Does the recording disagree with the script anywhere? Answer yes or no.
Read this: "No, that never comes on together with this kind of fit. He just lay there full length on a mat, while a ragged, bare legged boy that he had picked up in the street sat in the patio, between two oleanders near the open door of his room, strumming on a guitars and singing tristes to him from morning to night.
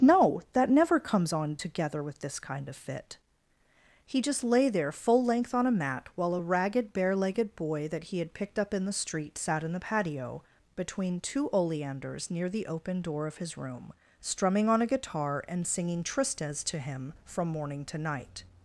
yes